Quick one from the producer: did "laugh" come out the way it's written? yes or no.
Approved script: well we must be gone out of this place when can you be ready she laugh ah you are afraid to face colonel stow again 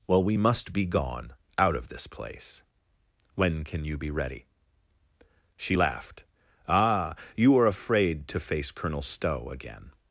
no